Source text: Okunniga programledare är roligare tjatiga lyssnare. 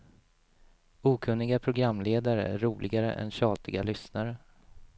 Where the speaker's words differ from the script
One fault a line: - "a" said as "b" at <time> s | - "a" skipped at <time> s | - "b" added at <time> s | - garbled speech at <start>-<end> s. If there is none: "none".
- "än" added at 3.1 s